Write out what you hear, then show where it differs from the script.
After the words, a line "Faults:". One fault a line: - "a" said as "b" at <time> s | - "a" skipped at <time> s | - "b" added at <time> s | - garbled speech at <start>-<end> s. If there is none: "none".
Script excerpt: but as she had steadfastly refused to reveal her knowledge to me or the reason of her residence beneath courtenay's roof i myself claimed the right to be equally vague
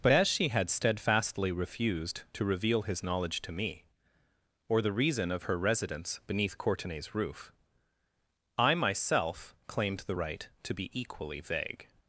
but as she had steadfastly refused to reveal his knowledge to me or the reason of her residence beneath courtenay's roof i myself claimed the right to be equally vague
Faults:
- "her" said as "his" at 2.8 s